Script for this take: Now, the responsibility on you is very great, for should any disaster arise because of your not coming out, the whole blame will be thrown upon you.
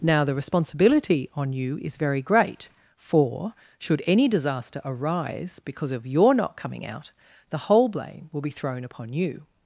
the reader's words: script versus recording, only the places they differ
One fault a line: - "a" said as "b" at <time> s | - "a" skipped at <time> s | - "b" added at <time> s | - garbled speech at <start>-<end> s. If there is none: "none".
none